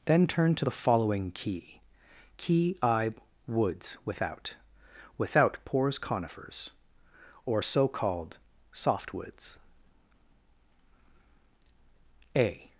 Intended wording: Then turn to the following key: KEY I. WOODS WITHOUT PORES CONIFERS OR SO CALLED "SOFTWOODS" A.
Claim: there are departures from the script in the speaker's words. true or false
true